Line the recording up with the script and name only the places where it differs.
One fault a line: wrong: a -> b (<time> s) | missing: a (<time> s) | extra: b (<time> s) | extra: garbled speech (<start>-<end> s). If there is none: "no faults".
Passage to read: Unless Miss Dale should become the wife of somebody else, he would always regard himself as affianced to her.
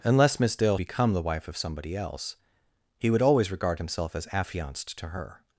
missing: should (0.8 s)